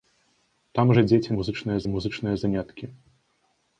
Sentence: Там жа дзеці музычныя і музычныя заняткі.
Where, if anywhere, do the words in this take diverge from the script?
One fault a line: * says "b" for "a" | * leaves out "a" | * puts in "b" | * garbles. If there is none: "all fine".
all fine